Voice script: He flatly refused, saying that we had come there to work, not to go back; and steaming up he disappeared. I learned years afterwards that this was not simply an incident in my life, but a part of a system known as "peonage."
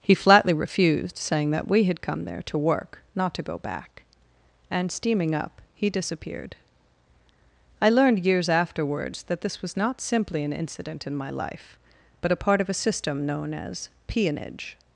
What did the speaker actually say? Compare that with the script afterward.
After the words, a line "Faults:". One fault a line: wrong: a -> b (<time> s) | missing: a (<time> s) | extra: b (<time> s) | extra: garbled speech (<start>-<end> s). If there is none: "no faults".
He flatly refused, saying that we had come there to work, not to go back; and steaming up he disappeared. I learned years afterwards that this was not simply an incident in my life, but a part of a system known as "peonage."
Faults:
no faults